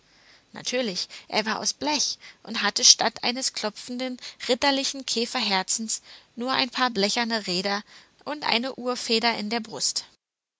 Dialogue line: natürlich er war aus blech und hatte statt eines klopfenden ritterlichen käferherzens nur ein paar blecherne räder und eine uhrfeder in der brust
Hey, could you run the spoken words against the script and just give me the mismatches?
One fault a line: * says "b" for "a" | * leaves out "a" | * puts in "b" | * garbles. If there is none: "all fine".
all fine